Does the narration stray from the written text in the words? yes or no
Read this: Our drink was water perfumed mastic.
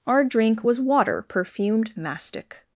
no